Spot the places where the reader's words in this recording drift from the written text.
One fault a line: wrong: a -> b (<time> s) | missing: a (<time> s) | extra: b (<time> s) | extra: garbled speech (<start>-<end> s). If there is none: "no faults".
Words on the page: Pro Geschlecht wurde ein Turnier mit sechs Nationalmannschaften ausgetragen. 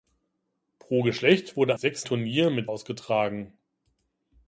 wrong: ein -> sechs (1.8 s)
missing: sechs Nationalmannschaften (2.7 s)